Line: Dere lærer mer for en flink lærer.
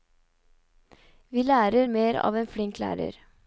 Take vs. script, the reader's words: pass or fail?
fail